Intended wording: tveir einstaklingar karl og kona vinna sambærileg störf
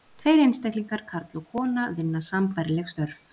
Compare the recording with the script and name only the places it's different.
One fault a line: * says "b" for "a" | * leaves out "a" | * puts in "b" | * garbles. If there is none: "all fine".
all fine